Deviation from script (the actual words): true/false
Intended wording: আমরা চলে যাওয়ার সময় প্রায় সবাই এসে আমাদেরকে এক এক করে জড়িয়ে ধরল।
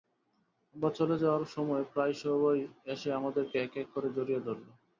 false